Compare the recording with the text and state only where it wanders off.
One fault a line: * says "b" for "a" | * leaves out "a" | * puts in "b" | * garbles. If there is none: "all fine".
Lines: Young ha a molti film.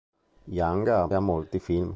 all fine